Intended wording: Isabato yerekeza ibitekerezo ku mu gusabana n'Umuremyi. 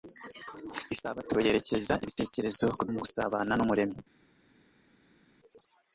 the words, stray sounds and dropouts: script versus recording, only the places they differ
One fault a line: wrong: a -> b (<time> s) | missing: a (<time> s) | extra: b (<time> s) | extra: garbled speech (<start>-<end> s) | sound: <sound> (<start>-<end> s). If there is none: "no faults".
no faults